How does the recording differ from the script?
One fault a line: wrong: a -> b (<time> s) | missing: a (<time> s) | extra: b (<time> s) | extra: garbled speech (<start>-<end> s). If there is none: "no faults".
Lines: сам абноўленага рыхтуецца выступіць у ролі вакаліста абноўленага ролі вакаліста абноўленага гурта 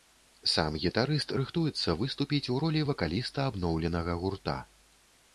wrong: абноўленага -> гітарыст (0.8 s)
missing: ролі вакаліста абноўленага (4.1 s)